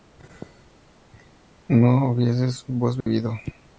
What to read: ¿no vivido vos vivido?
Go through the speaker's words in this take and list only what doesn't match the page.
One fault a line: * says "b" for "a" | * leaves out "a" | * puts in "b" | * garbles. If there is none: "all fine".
* says "hubieses" for "vivido"